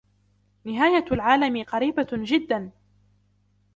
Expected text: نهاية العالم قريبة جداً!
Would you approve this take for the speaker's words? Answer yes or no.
yes